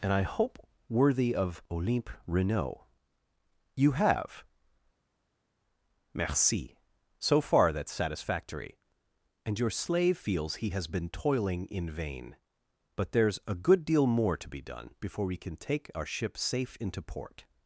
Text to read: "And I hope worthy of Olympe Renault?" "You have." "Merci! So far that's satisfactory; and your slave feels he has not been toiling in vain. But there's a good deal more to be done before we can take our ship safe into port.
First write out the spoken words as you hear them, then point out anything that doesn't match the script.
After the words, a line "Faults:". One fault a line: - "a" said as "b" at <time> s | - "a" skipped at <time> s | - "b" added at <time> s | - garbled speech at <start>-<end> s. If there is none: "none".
"And I hope worthy of Olympe Renault?" "You have." "Merci! So far that's satisfactory; and your slave feels he has been toiling in vain. But there's a good deal more to be done before we can take our ship safe into port.
Faults:
- "not" skipped at 10.9 s